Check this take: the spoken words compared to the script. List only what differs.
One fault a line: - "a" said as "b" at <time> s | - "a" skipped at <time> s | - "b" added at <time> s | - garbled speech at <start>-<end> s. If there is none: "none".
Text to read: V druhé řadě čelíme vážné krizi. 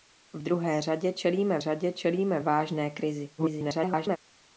- "řadě čelíme" added at 1.6 s
- garbled speech at 3.4-4.2 s